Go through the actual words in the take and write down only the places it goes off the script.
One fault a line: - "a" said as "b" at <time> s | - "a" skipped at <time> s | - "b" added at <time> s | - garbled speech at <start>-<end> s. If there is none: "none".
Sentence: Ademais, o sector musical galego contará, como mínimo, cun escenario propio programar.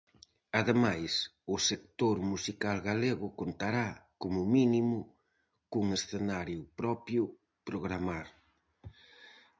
none